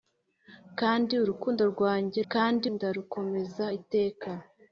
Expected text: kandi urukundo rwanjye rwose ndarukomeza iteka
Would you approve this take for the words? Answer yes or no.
no